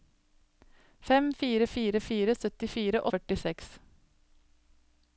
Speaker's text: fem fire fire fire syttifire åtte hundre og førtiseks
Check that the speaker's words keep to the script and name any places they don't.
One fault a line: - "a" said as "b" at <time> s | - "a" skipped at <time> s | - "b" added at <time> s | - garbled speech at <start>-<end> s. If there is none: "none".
- "åtte hundre" skipped at 3.0 s